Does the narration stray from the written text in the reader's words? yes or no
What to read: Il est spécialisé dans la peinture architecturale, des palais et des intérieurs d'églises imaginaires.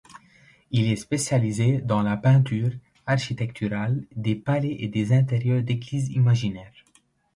no